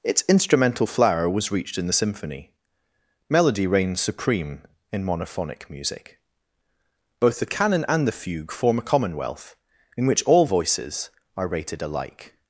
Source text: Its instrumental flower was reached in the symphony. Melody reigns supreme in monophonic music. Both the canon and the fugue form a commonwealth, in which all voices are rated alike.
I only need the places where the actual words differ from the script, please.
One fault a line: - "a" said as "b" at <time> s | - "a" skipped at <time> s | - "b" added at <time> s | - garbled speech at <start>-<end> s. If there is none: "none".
none